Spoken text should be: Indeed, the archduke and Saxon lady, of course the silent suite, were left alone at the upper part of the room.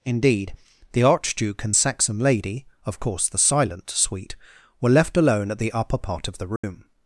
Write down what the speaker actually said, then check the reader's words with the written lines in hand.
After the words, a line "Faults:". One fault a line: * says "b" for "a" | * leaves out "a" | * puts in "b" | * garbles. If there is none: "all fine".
Indeed, the archduke and Saxon lady, of course the silent suite, were left alone at the upper part of the room.
Faults:
all fine